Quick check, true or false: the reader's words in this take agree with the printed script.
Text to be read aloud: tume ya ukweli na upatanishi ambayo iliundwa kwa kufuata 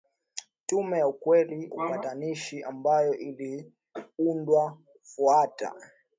false